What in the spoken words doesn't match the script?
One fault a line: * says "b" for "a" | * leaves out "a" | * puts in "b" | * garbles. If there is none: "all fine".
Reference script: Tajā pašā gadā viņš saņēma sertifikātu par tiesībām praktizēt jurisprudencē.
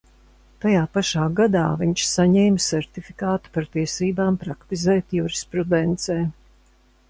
all fine